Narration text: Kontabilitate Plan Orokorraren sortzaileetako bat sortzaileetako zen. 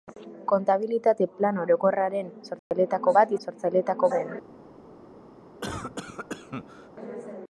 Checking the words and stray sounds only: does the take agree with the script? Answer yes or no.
no